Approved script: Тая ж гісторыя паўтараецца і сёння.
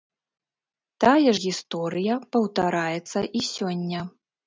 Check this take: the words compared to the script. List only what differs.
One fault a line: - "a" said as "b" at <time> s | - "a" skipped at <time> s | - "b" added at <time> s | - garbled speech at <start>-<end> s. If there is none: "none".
none